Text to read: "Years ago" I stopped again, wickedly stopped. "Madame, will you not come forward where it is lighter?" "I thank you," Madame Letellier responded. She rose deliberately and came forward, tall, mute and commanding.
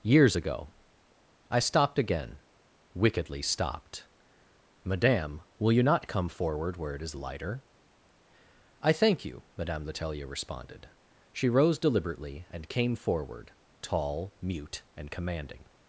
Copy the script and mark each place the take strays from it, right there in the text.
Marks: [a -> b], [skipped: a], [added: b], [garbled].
"Years ago" I stopped again, wickedly stopped. "Madame, will you not come forward where it is lighter?" "I thank you," Madame Letellier responded. She rose deliberately and came forward, tall, mute and commanding.